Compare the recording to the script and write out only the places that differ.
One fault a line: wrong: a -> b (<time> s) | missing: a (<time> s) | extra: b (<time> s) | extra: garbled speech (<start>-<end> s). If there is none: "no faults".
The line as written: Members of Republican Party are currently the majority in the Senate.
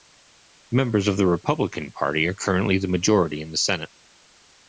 extra: the (1.2 s)